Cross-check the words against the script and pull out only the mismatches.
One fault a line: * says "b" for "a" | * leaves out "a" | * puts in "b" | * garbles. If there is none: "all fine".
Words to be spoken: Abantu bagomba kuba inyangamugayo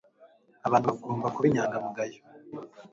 all fine